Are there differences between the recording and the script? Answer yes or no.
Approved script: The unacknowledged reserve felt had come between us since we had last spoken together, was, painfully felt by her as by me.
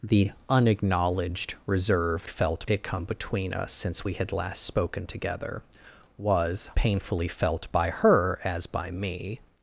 no